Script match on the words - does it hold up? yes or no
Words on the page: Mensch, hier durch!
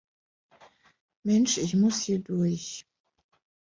no